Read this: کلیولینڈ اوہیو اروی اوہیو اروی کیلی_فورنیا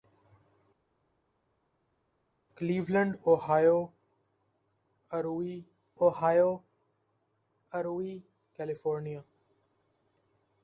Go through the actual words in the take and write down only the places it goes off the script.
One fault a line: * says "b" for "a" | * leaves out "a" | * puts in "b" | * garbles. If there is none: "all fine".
all fine